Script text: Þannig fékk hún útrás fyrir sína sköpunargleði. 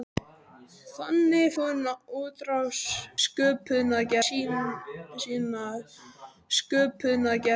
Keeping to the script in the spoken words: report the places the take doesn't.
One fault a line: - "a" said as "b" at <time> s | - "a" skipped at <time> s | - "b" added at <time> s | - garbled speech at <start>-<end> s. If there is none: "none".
- "fékk" skipped at 1.5 s
- "fyrir" said as "sköpunargleði" at 3.3 s